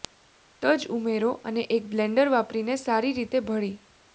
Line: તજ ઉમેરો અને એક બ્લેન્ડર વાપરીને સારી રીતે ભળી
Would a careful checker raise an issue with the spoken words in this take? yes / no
no